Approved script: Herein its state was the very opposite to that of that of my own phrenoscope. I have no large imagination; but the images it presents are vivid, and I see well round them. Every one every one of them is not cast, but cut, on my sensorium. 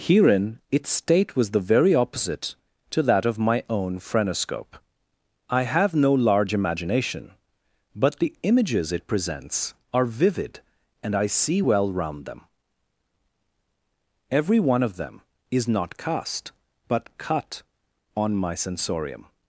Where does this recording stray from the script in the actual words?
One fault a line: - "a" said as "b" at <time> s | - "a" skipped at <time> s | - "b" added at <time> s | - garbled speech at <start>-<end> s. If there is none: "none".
- "that of" skipped at 3.4 s
- "every one" skipped at 14.8 s